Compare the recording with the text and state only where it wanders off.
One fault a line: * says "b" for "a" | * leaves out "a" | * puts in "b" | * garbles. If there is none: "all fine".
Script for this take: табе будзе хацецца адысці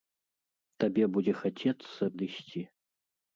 all fine